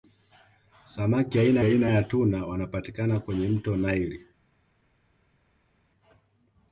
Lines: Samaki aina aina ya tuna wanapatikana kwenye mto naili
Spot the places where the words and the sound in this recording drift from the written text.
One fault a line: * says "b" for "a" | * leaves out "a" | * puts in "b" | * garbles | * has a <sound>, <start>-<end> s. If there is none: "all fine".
all fine